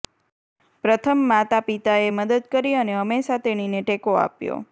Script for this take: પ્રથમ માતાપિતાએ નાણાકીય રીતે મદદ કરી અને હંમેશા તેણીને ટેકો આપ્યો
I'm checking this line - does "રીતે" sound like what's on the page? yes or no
no